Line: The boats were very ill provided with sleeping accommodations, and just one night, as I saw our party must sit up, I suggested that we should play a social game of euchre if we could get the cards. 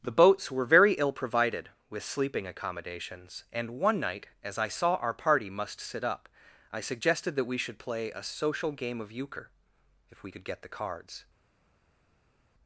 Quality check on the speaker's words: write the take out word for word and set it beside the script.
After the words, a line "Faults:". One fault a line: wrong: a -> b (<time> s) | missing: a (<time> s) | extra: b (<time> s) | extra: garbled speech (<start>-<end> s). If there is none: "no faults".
The boats were very ill provided with sleeping accommodations, and one night, as I saw our party must sit up, I suggested that we should play a social game of euchre if we could get the cards.
Faults:
missing: just (3.8 s)